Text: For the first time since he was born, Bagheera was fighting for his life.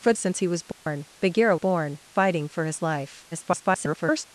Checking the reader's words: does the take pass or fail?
fail